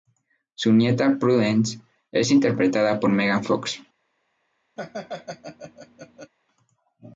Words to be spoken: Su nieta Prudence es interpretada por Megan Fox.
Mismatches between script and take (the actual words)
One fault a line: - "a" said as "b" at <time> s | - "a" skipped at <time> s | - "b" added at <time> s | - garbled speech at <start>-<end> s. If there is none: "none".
none